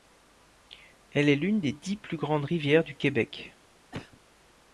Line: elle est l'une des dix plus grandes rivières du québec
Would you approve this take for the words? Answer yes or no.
yes